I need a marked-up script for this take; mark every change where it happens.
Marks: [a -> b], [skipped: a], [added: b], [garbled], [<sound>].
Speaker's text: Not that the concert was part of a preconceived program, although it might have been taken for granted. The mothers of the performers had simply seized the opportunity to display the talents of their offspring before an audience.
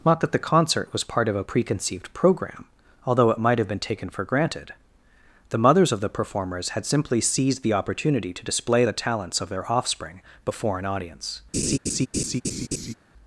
Not that the concert was part of a preconceived program, although it might have been taken for granted. The mothers of the performers had simply seized the opportunity to display the talents of their offspring before an audience. [laugh]